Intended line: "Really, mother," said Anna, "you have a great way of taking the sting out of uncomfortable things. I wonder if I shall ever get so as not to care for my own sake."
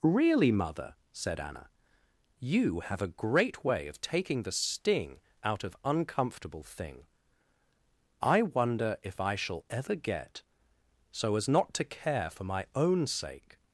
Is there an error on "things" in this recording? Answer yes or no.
yes